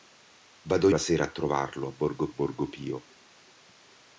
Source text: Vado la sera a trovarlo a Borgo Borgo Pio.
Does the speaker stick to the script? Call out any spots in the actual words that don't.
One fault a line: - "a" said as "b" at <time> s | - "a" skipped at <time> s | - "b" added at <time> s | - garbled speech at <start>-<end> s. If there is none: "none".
none